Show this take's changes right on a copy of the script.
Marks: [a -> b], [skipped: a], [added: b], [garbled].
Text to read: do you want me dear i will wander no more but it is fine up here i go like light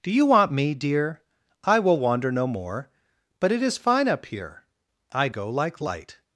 do you want me dear i will wander no more but it is fine up here i go like light